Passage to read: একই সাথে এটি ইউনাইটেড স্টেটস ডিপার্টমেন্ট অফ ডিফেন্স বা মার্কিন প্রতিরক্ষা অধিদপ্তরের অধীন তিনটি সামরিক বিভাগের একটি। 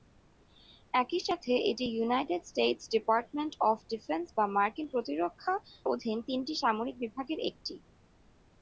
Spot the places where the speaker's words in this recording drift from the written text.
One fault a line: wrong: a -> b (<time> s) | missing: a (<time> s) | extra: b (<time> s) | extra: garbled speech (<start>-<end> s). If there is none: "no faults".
missing: অধিদপ্তরের (5.5 s)